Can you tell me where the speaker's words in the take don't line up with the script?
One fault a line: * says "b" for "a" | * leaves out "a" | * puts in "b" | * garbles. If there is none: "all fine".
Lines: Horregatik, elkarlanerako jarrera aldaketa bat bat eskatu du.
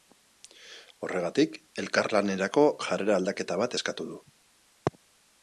* leaves out "bat"